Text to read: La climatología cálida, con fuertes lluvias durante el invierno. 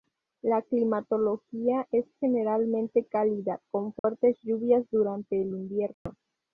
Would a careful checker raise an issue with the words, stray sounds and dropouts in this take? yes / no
yes